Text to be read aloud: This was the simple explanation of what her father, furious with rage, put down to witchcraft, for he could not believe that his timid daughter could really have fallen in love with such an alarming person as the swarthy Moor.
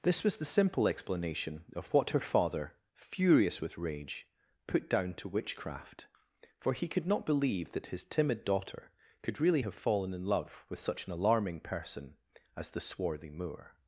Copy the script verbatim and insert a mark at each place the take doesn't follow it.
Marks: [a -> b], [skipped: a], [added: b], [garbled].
This was the simple explanation of what her father, furious with rage, put down to witchcraft, for he could not believe that his timid daughter could really have fallen in love with such an alarming person as the swarthy Moor.